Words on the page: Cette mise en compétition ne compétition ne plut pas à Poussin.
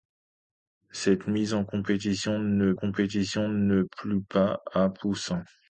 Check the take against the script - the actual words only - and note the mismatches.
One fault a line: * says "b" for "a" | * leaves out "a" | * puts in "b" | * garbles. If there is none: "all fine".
all fine